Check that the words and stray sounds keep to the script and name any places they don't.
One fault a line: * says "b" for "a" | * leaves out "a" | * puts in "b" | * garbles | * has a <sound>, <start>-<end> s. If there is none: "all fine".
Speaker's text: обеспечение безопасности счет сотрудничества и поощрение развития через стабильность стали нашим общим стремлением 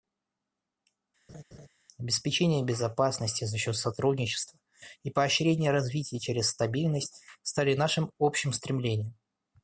* has a laugh, 1.3-1.7 s
* puts in "за"